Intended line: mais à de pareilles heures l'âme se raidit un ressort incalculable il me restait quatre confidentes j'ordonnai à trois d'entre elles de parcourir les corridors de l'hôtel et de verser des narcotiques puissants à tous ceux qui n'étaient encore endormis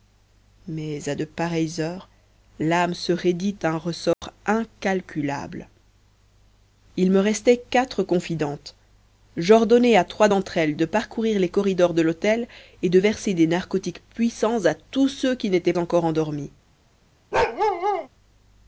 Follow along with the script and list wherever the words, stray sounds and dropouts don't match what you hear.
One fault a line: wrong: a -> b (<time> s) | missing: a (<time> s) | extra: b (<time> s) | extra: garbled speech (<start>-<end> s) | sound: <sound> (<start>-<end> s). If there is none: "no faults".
sound: dropout (4.1-4.2 s)
sound: bark (17.3-18.1 s)